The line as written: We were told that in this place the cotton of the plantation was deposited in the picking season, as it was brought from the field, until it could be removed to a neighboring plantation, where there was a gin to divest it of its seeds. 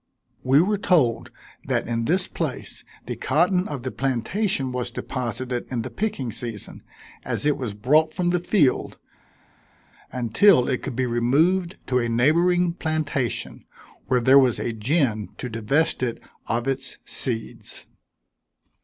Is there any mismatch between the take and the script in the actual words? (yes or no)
no